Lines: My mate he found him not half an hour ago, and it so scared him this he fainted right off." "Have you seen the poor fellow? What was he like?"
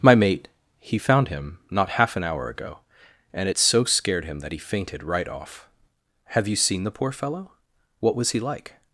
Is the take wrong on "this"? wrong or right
wrong